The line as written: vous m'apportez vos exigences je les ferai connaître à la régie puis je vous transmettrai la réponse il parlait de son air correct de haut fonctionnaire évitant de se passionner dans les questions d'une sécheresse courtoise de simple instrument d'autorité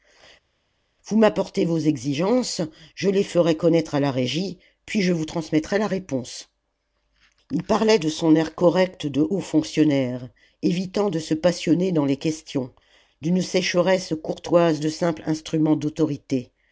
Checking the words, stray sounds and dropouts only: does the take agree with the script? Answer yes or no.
yes